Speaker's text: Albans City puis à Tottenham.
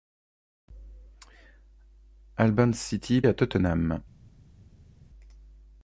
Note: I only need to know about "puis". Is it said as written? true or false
false